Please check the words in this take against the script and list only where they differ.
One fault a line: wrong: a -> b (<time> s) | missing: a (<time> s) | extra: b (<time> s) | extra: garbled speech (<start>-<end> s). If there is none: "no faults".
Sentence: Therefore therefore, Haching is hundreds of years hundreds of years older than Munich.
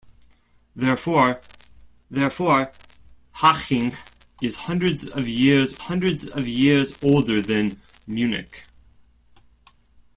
no faults